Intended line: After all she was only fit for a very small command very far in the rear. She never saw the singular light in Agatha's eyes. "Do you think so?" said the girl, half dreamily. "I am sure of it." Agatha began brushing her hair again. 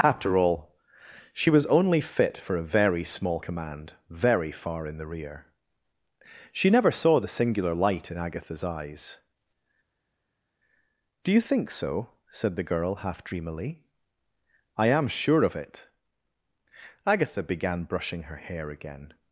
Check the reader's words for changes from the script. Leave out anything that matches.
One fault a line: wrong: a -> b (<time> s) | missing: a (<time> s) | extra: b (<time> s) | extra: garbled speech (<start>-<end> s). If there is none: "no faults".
no faults